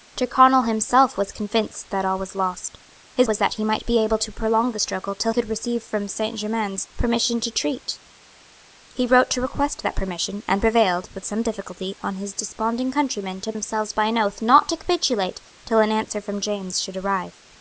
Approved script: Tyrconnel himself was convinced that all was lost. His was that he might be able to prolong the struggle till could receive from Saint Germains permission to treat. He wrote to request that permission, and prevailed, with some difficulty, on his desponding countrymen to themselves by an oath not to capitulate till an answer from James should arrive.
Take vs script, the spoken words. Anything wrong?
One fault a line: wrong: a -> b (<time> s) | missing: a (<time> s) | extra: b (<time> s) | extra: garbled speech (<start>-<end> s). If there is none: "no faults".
no faults